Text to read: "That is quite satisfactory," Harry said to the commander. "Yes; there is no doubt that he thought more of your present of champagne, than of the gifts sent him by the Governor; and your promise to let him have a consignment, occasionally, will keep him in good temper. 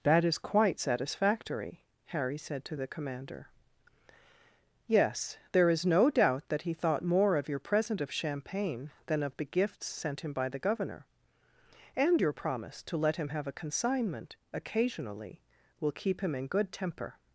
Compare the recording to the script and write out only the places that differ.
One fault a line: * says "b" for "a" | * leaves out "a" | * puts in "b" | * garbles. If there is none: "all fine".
all fine